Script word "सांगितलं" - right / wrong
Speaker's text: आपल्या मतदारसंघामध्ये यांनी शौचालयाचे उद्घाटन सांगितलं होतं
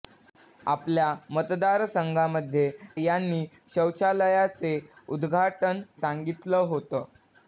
right